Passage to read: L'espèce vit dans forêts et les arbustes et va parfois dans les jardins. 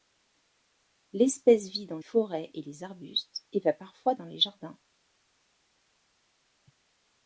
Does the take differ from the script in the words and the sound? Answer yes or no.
no